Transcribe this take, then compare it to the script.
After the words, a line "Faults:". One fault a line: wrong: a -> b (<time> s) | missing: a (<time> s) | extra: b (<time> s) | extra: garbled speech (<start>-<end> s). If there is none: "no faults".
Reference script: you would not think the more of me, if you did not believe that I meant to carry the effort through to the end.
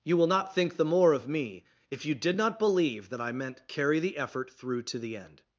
you will not think the more of me, if you did not believe that I meant carry the effort through to the end.
Faults:
wrong: would -> will (0.2 s)
missing: to (3.7 s)